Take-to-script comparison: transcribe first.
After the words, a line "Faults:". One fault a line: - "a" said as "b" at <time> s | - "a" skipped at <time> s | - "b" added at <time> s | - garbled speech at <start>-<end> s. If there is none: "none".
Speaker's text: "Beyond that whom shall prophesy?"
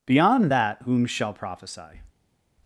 "Beyond that whom shall prophesy?"
Faults:
none